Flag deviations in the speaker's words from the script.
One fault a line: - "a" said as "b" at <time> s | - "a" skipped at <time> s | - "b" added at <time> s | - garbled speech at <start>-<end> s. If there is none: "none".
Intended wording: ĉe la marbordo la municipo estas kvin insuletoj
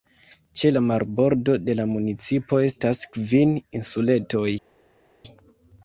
- "de" added at 1.7 s